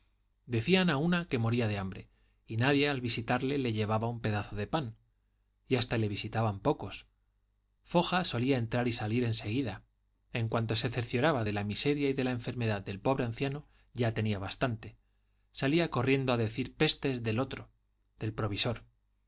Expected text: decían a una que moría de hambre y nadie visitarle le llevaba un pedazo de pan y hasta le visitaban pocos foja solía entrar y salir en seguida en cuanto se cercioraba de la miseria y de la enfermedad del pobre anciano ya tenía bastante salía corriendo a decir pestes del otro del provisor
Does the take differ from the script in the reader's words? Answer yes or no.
yes